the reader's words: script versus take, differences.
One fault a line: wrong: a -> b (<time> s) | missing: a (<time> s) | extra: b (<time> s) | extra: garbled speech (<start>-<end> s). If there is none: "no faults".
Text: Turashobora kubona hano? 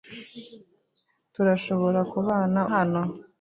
no faults